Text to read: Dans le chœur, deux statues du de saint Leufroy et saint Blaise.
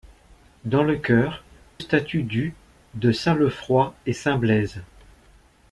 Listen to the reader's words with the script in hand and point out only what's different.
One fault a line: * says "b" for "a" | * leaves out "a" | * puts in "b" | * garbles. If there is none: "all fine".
* leaves out "deux"